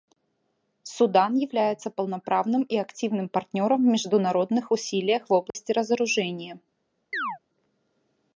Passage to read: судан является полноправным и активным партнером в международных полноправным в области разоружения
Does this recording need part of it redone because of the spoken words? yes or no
yes